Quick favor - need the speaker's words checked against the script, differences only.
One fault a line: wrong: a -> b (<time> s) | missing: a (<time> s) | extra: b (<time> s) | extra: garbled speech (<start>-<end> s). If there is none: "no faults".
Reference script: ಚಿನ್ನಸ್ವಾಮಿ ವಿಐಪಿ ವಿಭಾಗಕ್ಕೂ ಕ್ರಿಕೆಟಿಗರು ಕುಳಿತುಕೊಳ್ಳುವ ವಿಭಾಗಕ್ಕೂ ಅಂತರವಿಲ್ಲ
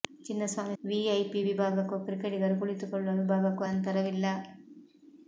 no faults